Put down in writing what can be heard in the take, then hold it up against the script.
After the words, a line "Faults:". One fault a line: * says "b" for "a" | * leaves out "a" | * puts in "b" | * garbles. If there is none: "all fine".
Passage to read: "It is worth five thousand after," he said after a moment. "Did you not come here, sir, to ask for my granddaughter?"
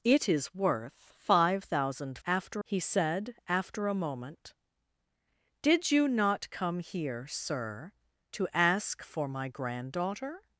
"It is worth five thousand after," he said after a moment. "Did you not come here, sir, to ask for my granddaughter?"
Faults:
all fine